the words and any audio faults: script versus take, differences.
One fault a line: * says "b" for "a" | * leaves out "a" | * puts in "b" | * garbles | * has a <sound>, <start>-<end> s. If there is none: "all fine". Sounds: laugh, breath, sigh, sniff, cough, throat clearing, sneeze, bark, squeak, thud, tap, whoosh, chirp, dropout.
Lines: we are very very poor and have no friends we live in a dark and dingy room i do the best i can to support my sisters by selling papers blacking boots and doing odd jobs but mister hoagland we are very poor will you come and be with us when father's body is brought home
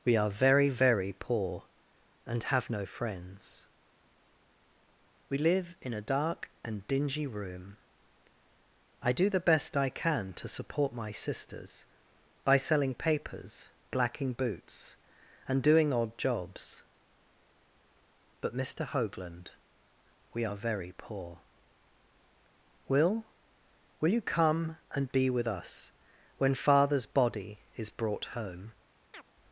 * puts in "will"
* has a chirp, 29.1-29.3 s